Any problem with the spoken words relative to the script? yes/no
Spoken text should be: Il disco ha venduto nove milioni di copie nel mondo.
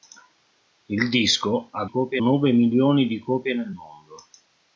yes